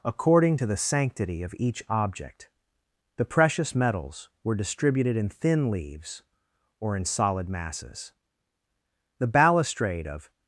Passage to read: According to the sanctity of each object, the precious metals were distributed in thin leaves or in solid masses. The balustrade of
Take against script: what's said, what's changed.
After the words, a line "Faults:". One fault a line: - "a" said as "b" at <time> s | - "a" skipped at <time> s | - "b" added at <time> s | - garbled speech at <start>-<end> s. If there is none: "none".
According to the sanctity of each object, the precious metals were distributed in thin leaves or in solid masses. The balustrade of
Faults:
none